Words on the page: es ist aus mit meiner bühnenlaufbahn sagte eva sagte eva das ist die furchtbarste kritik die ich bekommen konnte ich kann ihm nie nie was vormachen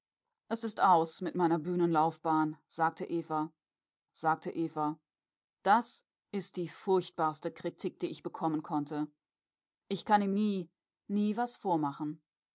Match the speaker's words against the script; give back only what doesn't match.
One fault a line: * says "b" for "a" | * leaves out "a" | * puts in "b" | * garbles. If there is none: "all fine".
all fine